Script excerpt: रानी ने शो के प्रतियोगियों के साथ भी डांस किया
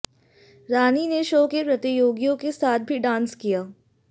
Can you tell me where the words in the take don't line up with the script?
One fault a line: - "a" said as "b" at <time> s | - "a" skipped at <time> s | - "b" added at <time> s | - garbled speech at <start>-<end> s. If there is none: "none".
none